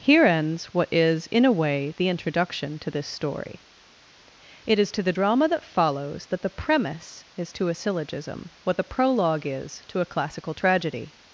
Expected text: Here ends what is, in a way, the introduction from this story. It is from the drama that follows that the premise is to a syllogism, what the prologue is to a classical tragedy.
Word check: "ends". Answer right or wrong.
right